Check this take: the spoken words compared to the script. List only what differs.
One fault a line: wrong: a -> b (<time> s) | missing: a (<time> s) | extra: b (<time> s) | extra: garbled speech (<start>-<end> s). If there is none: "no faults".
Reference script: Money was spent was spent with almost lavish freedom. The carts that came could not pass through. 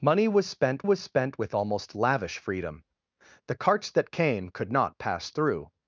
no faults